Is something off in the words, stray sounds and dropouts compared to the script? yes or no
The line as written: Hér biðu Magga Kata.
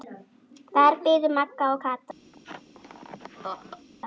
yes